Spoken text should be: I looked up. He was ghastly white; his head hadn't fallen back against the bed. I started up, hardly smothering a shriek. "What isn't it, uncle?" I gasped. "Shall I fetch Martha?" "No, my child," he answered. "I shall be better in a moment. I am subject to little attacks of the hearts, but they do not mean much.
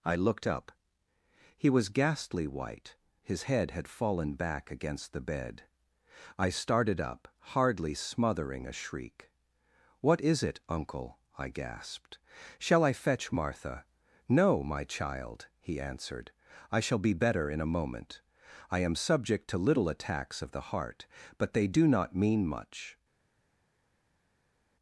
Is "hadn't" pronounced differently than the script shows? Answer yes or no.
yes